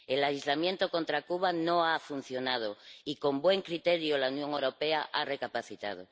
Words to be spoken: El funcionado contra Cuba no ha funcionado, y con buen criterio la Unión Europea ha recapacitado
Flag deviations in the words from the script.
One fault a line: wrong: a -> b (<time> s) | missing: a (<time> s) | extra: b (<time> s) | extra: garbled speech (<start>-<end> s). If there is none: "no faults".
wrong: funcionado -> aislamiento (0.2 s)